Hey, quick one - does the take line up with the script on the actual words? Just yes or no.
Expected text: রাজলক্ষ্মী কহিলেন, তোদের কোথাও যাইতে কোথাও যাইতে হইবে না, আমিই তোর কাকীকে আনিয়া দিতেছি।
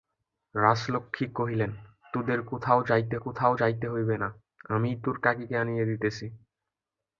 yes